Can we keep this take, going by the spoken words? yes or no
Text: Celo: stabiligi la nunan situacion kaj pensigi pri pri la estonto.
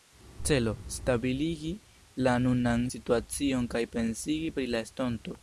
no